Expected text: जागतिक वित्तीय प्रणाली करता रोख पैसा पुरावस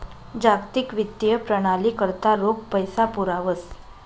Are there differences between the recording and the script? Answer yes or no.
no